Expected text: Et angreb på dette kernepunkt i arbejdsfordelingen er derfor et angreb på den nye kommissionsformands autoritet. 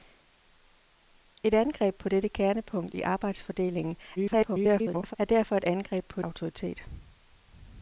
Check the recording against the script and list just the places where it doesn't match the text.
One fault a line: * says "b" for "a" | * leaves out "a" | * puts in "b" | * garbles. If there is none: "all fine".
* garbles
* leaves out "den nye kommissionsformands"